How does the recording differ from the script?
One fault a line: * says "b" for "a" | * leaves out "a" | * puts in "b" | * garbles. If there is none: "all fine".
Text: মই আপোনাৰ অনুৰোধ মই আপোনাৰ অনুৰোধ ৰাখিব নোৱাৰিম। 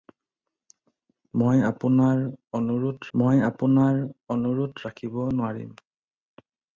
all fine